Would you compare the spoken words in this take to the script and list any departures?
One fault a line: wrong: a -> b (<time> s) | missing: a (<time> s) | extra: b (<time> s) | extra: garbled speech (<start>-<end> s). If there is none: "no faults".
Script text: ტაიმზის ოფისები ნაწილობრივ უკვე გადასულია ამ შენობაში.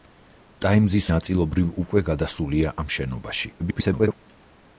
missing: ოფისები (1.1 s)
extra: garbled speech (3.6-4.1 s)